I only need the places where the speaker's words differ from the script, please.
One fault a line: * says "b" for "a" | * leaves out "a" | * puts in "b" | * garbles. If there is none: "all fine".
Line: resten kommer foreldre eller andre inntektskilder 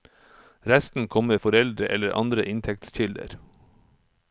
all fine